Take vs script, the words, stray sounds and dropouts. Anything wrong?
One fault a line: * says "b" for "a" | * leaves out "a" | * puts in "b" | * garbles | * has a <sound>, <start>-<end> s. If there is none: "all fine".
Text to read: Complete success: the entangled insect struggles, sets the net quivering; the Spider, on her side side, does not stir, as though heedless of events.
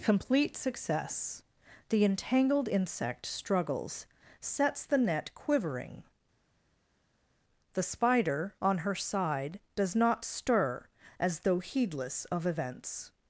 * leaves out "side"